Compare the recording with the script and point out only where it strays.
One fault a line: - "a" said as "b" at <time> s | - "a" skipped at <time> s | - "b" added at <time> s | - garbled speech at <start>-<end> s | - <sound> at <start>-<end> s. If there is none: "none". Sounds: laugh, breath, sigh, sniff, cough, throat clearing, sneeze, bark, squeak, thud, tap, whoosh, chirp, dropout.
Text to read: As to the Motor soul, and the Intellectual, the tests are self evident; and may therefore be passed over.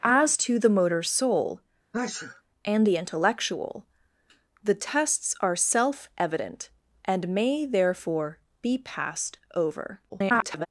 - sneeze at 1.9-2.4 s
- garbled speech at 10.1-10.7 s